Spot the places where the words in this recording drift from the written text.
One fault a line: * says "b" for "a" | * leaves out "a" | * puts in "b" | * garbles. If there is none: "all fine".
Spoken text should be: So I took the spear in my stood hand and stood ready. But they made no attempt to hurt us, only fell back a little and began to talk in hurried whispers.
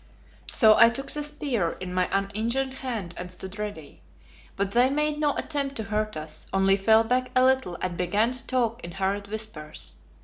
* says "uninjured" for "stood"